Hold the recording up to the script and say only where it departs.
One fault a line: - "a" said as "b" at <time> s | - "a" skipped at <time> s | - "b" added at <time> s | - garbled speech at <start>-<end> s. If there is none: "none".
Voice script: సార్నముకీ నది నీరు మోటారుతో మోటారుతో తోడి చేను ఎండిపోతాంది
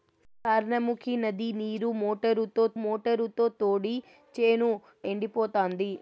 none